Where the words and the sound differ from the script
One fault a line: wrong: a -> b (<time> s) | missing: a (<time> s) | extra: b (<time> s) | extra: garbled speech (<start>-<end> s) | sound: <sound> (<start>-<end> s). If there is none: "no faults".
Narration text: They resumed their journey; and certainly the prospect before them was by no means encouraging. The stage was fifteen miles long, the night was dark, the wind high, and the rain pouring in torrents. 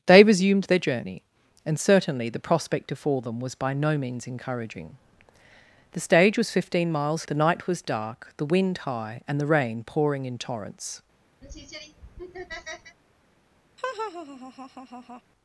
missing: long (7.3 s)
sound: laugh (11.4-13.0 s)
sound: laugh (13.8-15.2 s)